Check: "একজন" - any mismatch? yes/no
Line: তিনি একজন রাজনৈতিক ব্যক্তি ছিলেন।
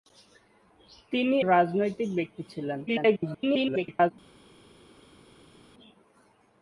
yes